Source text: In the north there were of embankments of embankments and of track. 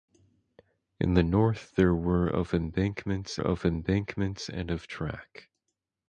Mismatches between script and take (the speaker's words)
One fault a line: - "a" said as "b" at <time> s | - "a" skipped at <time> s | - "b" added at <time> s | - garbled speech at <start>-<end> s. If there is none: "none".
none